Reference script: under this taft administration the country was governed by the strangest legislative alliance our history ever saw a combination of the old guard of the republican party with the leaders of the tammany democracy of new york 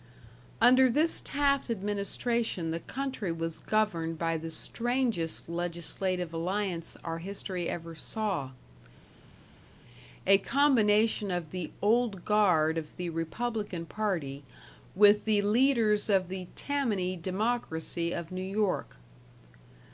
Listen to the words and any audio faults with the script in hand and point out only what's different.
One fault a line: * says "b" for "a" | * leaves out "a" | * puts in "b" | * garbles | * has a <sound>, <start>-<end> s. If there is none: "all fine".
all fine